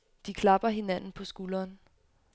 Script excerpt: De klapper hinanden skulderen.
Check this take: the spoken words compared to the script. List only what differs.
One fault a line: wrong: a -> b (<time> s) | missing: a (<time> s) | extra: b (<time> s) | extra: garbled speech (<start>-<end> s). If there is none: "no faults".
extra: på (1.1 s)